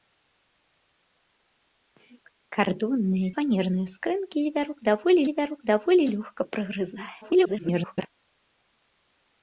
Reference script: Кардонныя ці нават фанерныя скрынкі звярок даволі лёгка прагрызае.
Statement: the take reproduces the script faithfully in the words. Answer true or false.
false